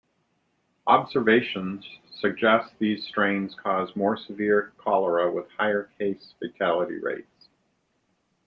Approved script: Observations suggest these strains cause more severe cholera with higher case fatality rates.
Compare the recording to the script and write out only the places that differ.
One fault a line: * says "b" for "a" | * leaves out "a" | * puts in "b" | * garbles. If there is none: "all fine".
all fine